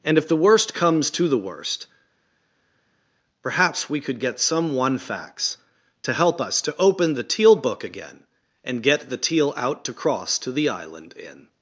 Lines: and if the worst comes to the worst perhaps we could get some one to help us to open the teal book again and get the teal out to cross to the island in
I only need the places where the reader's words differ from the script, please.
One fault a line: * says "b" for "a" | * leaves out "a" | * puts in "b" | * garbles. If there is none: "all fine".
* puts in "facts"